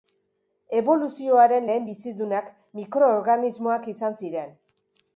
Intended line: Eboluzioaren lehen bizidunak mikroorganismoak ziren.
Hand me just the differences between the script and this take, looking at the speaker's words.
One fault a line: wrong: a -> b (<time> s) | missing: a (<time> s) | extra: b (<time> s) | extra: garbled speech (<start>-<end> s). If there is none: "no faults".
extra: izan (4.0 s)